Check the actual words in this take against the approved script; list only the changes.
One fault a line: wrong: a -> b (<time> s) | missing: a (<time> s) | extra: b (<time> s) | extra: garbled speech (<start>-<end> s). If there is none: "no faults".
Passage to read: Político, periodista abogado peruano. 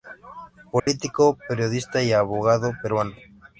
extra: y (2.0 s)